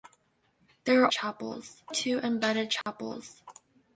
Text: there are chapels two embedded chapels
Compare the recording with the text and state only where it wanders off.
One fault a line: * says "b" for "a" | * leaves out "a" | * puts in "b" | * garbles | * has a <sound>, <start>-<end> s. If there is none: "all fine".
* has a dropout, 2.8-2.9 s